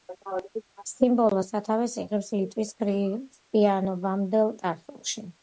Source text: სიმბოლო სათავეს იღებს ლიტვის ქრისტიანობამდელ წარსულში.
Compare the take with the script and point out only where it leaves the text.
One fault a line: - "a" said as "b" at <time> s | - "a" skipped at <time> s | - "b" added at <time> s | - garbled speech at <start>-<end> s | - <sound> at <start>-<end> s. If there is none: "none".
none